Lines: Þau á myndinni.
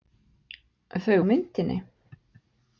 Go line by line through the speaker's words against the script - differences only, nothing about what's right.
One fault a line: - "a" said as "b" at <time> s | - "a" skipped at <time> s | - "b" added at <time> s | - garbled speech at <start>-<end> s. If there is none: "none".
none